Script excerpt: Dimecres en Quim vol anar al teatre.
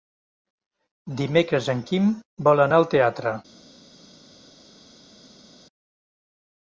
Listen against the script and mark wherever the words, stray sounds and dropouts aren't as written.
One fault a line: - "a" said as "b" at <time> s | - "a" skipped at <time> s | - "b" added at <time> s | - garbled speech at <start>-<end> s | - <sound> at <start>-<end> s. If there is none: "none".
none